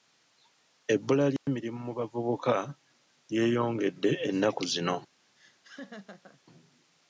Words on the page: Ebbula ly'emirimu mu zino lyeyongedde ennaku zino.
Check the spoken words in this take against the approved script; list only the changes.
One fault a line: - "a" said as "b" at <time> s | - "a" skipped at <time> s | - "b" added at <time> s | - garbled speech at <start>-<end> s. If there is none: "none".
- "zino" said as "bavubuka" at 2.0 s